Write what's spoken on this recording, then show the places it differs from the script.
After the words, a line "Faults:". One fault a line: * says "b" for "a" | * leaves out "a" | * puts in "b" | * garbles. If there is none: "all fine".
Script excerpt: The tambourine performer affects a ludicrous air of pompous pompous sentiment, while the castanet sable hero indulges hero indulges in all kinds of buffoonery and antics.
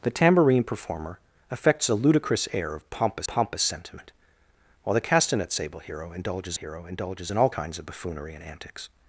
The tambourine performer affects a ludicrous air of pompous pompous sentiment, while the castanet sable hero indulges hero indulges in all kinds of buffoonery and antics.
Faults:
all fine